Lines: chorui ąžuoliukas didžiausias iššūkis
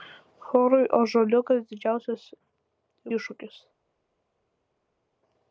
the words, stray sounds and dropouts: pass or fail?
pass